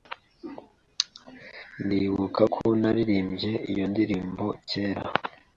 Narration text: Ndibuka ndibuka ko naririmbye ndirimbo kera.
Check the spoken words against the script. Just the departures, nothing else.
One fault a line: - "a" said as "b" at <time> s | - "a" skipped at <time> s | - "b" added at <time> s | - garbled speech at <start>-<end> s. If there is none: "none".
- "ndibuka" skipped at 2.4 s
- "iyo" added at 3.7 s